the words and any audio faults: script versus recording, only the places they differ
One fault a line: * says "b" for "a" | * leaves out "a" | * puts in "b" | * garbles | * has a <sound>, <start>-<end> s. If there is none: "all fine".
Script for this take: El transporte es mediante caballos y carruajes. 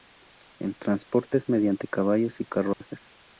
* has a dropout, 2.7-2.8 s